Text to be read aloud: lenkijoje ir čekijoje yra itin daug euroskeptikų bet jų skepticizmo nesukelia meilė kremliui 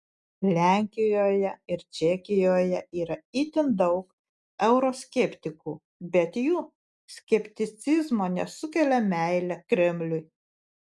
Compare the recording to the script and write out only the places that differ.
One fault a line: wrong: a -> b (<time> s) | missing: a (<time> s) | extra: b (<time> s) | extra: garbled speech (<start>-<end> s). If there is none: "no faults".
no faults